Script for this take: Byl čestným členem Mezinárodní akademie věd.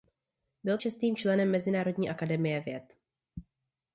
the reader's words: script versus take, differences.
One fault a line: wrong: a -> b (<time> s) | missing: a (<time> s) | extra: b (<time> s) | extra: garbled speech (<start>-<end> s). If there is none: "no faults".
no faults